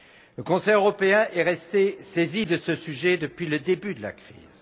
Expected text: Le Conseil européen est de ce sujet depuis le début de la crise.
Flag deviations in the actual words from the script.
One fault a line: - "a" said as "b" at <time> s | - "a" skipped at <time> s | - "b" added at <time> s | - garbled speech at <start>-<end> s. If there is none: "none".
- "resté saisi" added at 1.4 s